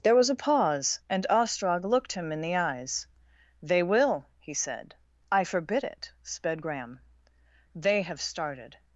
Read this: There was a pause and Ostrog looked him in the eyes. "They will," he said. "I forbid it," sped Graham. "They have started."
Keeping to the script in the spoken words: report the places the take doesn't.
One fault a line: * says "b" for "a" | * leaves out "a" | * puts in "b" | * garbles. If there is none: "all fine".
all fine